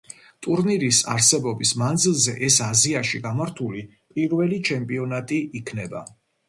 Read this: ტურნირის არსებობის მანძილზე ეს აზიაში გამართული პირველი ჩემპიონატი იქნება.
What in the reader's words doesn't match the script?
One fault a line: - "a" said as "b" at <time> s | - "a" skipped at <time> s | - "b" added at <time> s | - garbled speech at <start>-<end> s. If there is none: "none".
none